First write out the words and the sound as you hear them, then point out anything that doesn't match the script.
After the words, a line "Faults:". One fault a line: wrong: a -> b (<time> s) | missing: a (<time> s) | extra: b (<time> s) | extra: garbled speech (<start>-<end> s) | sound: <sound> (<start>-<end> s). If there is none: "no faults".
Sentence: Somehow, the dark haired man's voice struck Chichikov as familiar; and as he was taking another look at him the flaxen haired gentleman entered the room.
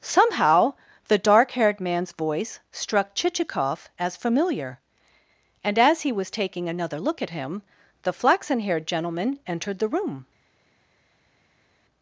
Somehow, the dark haired man's voice struck Chichikov as familiar; and as he was taking another look at him the flaxen haired gentleman entered the room.
Faults:
no faults